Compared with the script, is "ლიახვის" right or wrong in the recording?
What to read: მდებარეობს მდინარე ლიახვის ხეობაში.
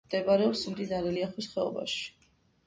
right